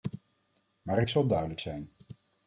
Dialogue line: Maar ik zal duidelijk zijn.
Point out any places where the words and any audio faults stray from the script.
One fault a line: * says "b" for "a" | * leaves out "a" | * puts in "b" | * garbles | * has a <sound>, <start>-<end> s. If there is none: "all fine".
all fine